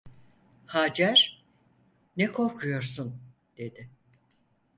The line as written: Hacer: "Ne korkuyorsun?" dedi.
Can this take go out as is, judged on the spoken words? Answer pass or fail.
pass